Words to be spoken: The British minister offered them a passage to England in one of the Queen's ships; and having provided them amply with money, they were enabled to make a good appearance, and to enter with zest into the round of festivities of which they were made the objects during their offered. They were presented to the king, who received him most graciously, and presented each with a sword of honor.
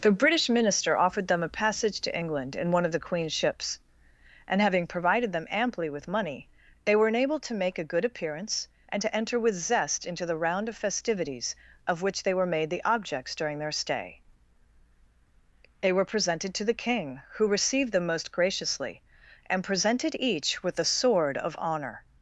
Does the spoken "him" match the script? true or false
false